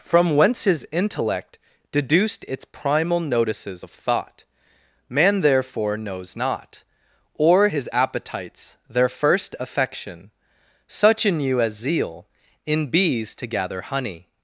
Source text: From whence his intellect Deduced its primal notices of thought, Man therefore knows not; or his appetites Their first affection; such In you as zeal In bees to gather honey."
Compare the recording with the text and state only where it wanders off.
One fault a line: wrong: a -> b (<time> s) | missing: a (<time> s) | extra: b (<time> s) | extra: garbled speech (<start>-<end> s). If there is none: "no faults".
no faults